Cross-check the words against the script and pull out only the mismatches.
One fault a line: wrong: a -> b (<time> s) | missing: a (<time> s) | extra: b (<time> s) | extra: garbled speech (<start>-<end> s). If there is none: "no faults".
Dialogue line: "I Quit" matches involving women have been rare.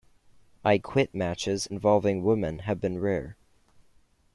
no faults